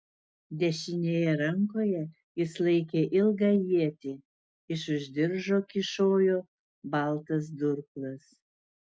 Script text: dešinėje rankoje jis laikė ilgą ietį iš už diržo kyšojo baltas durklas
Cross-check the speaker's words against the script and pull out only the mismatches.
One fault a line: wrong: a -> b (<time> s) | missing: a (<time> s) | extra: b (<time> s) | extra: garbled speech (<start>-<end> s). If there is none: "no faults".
no faults